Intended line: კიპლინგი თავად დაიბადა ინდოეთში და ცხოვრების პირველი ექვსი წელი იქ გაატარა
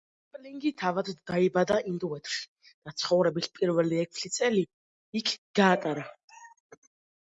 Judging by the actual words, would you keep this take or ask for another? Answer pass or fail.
pass